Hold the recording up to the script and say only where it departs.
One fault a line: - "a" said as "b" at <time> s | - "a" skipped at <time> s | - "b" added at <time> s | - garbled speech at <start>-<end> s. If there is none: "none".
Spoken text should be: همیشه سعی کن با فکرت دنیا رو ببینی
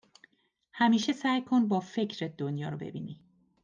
none